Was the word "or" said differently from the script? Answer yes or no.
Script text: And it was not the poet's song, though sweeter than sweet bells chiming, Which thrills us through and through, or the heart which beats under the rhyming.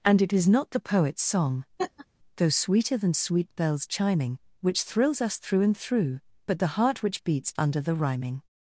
yes